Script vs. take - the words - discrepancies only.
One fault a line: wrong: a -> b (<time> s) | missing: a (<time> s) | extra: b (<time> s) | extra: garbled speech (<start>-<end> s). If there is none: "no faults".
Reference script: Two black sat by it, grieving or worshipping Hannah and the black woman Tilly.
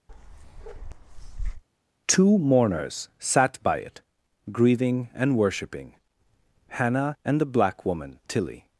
wrong: black -> mourners (2.4 s)
wrong: or -> and (5.2 s)